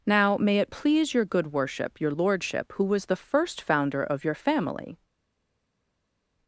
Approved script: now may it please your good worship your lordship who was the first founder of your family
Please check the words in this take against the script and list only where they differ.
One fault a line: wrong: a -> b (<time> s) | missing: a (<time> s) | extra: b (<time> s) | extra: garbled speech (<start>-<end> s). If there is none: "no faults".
no faults